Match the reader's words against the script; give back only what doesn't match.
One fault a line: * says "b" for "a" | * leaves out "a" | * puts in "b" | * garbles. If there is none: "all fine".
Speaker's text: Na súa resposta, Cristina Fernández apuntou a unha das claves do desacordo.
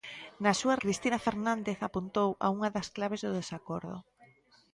* leaves out "resposta"